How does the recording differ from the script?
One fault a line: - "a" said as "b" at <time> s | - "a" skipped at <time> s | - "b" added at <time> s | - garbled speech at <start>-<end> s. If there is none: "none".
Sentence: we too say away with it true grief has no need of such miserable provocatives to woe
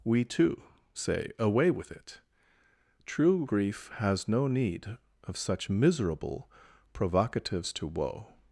none